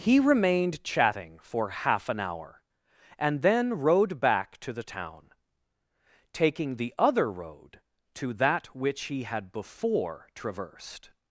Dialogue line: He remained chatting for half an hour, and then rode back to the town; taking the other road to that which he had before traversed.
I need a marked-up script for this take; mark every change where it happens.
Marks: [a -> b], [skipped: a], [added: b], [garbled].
He remained chatting for half an hour, and then rode back to the town; taking the other road to that which he had before traversed.